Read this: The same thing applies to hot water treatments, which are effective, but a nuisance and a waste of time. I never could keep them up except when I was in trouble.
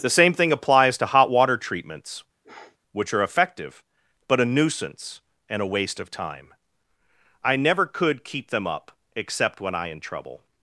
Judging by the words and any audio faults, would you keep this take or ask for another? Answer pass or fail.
fail